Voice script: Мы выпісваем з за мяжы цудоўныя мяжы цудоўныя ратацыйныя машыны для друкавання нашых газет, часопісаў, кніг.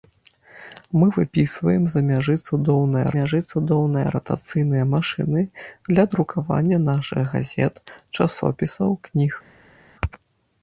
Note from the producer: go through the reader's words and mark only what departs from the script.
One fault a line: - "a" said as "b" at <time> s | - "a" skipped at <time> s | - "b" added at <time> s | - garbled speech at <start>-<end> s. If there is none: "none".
none